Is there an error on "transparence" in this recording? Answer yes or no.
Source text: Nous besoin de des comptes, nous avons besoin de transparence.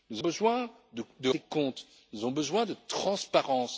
no